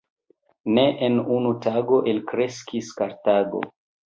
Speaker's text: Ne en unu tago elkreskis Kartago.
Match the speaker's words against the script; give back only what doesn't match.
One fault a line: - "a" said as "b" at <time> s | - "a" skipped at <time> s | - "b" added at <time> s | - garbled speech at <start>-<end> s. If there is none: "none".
none